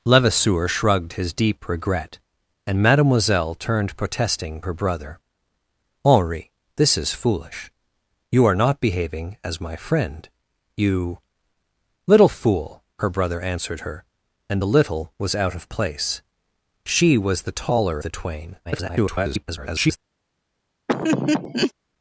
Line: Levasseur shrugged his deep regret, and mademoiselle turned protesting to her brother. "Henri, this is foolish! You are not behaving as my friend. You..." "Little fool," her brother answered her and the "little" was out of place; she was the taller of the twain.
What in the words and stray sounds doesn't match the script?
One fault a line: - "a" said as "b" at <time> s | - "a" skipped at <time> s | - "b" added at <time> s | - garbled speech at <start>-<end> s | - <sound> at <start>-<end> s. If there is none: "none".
- "to" skipped at 4.6 s
- "of" skipped at 18.0 s
- garbled speech at 18.6-20.0 s
- laugh at 20.9-21.7 s